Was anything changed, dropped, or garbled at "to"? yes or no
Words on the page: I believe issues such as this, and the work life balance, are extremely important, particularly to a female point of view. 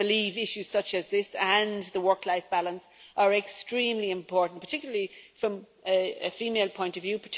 yes